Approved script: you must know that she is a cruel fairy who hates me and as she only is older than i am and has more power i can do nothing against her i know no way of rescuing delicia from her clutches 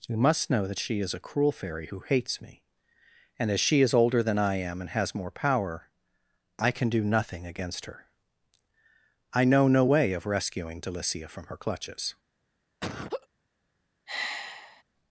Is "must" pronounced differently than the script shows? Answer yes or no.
no